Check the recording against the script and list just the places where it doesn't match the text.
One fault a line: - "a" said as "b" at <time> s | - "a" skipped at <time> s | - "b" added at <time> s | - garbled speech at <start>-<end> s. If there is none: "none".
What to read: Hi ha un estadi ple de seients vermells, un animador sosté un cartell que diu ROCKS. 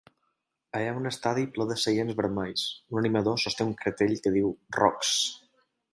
none